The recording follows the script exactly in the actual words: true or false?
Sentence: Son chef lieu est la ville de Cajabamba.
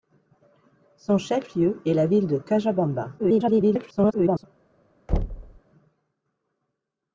false